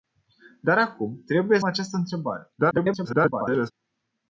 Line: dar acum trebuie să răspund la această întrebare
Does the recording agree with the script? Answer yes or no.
no